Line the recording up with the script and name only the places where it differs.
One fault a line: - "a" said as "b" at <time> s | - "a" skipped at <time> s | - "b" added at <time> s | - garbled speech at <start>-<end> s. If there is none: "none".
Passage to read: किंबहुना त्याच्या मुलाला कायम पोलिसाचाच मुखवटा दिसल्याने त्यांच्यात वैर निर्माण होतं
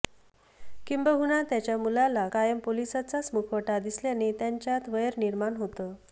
none